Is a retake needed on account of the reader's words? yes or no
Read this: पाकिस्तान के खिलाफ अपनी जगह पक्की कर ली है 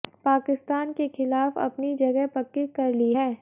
no